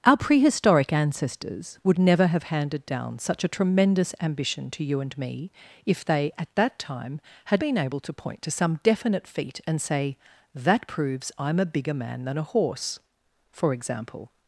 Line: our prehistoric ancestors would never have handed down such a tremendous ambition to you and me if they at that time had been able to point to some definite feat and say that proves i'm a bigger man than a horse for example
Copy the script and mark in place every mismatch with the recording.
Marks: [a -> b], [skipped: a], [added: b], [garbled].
our prehistoric ancestors would never have handed down such a tremendous ambition to you and me if they at that time had been able to point to some definite feat and say that proves i'm a bigger man than a horse for example